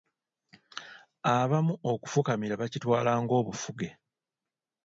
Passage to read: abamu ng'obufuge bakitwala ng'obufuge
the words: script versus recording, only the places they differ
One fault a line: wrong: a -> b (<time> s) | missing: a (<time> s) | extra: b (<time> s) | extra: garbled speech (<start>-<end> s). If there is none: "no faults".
wrong: ng'obufuge -> okufukamira (1.9 s)